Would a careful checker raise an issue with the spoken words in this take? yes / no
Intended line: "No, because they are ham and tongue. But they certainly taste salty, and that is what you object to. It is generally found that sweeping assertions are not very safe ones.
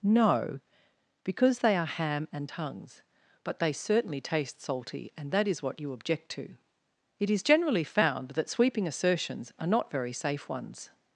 yes